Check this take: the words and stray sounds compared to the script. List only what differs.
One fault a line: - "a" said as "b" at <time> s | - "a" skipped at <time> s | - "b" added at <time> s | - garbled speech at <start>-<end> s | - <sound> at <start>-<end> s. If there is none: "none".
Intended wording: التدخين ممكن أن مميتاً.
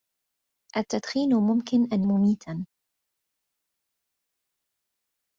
none